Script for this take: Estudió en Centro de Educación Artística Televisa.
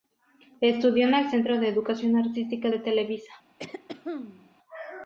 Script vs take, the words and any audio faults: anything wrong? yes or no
yes